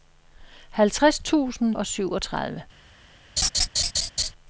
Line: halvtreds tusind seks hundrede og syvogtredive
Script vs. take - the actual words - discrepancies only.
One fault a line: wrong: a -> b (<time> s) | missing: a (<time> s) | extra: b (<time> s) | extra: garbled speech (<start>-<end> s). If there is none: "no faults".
missing: seks hundrede (1.8 s)